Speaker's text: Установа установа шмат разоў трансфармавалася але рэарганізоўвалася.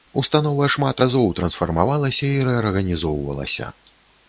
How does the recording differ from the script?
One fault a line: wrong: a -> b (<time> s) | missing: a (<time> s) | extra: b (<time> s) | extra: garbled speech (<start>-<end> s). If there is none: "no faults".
missing: установа (0.7 s)
wrong: але -> і (2.4 s)